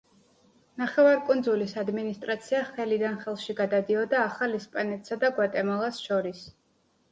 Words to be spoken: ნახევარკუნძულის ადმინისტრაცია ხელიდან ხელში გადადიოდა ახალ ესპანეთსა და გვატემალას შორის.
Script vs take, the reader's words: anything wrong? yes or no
no